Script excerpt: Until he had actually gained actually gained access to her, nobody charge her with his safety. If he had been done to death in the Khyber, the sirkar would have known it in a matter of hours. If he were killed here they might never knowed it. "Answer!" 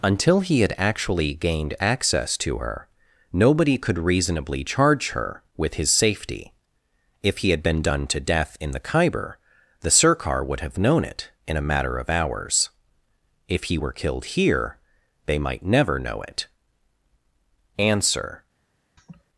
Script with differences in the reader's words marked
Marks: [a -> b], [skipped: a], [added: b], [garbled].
Until he had actually gained [skipped: actually gained] access to her, nobody [added: could reasonably] charge her with his safety. If he had been done to death in the Khyber, the sirkar would have known it in a matter of hours. If he were killed here they might never [knowed -> know] it. "Answer!"